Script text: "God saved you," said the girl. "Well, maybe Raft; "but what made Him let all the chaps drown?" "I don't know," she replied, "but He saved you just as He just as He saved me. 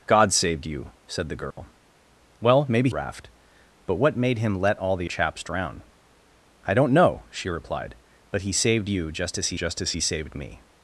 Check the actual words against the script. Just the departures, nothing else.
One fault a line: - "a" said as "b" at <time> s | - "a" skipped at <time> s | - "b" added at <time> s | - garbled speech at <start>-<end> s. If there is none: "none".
none